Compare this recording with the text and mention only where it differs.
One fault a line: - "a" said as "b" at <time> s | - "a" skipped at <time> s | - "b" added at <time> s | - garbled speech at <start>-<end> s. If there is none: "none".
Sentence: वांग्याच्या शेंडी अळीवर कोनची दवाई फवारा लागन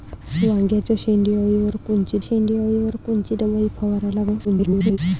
- "शेंडी अळीवर कोनची" added at 2.2 s
- garbled speech at 4.4-5.0 s